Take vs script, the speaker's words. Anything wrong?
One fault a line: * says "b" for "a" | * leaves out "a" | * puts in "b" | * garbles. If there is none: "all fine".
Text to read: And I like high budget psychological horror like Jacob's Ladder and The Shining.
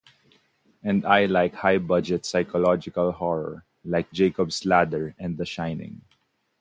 all fine